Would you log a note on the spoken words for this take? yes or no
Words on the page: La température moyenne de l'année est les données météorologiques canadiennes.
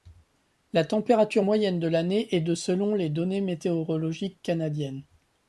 yes